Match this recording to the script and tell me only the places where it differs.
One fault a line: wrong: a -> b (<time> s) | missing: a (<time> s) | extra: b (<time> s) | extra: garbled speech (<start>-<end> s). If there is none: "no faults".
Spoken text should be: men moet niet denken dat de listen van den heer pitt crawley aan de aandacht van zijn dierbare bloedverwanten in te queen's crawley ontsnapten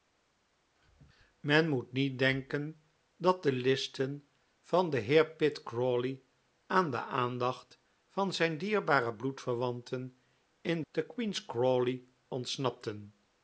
no faults